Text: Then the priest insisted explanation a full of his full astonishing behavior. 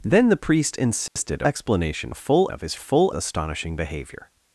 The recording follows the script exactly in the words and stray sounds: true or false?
false